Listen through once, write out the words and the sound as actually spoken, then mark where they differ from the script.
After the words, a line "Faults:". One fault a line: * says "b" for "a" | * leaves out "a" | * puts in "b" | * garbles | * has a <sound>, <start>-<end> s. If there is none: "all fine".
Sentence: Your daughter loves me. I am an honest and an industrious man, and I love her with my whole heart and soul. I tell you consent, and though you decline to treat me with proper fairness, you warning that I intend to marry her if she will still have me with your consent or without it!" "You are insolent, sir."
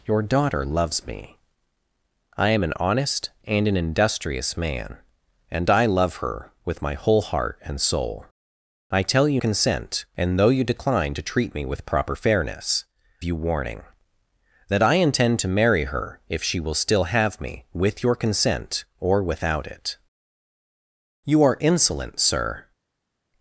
Your daughter loves me. I am an honest and an industrious man, and I love her with my whole heart and soul. I tell you consent, and though you decline to treat me with proper fairness, you warning that I intend to marry her if she will still have me with your consent or without it!" "You are insolent, sir."
Faults:
all fine